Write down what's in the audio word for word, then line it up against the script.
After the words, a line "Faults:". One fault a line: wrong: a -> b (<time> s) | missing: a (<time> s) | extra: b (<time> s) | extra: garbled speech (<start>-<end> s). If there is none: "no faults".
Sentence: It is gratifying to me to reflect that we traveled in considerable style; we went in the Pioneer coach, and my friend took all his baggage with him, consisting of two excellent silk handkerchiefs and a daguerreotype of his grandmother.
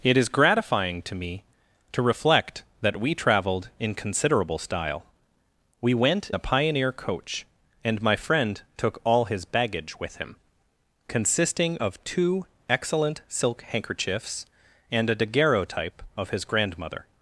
It is gratifying to me to reflect that we traveled in considerable style; we went the Pioneer coach, and my friend took all his baggage with him, consisting of two excellent silk handkerchiefs and a daguerreotype of his grandmother.
Faults:
missing: in (6.3 s)